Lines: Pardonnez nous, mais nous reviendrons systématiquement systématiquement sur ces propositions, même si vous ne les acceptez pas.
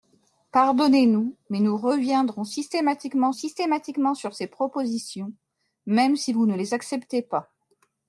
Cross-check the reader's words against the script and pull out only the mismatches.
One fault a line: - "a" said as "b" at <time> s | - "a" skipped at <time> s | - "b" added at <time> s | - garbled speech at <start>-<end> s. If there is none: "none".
none